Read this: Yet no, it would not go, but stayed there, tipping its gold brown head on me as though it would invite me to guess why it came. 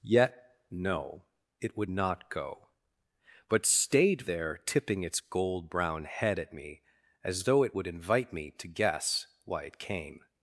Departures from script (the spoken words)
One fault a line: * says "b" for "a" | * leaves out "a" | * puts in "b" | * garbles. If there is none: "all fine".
* says "at" for "on"